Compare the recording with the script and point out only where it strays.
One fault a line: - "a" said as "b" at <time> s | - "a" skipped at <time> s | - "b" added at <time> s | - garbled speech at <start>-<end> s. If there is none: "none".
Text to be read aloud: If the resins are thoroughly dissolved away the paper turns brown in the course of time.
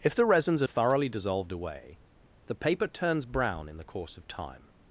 none